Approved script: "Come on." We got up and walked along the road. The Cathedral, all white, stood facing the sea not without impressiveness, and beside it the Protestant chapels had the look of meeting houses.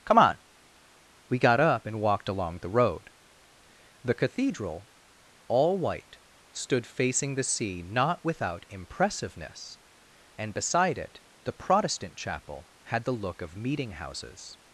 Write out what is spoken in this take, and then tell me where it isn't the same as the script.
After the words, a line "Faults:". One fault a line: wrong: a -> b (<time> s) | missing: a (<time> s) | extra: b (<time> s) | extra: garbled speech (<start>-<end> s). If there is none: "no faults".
"Come on." We got up and walked along the road. The Cathedral, all white, stood facing the sea not without impressiveness, and beside it the Protestant chapel had the look of meeting houses.
Faults:
wrong: chapels -> chapel (12.2 s)